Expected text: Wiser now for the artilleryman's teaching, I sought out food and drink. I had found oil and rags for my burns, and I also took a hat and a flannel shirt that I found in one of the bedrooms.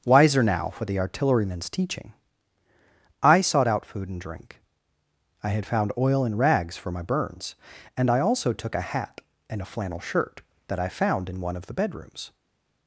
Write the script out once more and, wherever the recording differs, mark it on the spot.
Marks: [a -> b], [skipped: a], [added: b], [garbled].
Wiser now for the artilleryman's teaching, I sought out food and drink. I had found oil and rags for my burns, and I also took a hat and a flannel shirt that I found in one of the bedrooms.